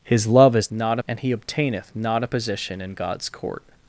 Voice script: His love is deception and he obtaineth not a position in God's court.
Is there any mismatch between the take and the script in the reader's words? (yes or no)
yes